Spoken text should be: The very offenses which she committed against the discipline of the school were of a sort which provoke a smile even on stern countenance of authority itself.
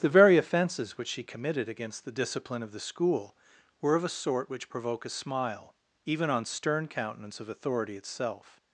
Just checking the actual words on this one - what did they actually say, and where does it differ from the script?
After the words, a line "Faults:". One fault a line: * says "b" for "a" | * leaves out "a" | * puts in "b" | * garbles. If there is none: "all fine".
The very offenses which she committed against the discipline of the school were of a sort which provoke a smile even on stern countenance of authority itself.
Faults:
all fine